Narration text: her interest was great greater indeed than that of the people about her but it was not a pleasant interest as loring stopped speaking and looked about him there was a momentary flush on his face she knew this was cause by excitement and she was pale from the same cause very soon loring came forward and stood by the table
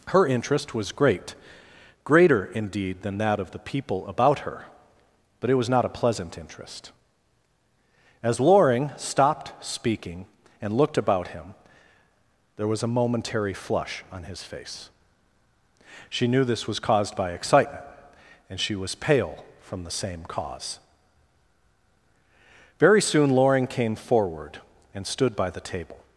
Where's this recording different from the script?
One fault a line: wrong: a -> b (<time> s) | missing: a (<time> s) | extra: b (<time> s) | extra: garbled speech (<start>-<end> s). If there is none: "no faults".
wrong: cause -> caused (16.8 s)